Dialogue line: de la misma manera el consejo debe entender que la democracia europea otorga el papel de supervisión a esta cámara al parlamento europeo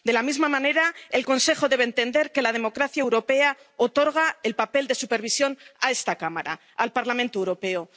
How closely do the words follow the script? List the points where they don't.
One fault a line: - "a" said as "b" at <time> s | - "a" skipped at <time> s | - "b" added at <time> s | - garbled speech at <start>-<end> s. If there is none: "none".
none